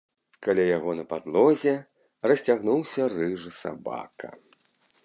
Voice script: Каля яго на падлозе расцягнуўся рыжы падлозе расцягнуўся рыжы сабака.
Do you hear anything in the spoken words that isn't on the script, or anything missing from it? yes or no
yes